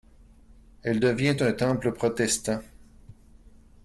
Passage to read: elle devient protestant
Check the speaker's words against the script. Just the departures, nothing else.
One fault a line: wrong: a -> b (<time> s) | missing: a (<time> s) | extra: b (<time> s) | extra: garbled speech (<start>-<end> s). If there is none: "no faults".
extra: un temple (1.4 s)